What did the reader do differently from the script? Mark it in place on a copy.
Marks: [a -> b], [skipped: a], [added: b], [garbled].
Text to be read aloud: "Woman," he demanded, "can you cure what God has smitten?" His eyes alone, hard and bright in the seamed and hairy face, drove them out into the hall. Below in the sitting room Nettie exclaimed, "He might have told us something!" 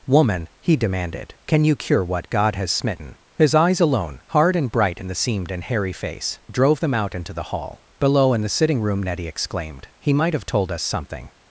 "Woman," he demanded, "can you cure what God has smitten?" His eyes alone, hard and bright in the seamed and hairy face, drove them out into the hall. Below in the sitting room Nettie exclaimed, "He might have told us something!"